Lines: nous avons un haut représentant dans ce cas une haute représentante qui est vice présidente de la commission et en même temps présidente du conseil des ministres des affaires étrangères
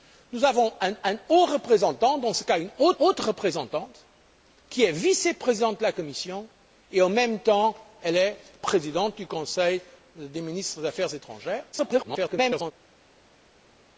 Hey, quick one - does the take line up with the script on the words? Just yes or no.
no